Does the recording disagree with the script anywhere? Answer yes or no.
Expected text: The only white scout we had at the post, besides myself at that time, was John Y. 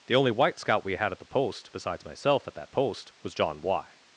yes